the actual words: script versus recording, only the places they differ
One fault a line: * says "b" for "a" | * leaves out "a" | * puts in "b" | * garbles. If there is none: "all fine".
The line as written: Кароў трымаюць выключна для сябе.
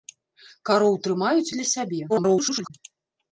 * leaves out "выключна"
* garbles